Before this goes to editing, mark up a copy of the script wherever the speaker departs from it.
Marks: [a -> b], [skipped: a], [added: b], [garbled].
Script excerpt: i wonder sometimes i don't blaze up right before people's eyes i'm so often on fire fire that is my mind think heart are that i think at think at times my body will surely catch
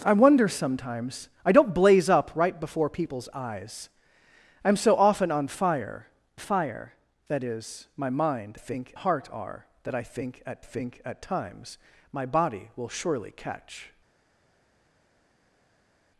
i wonder sometimes i don't blaze up right before people's eyes i'm so often on fire fire that is my mind think heart are that i think at think at times my body will surely catch